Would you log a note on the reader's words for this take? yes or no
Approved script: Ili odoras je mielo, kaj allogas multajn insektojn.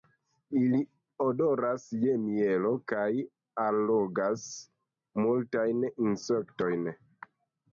no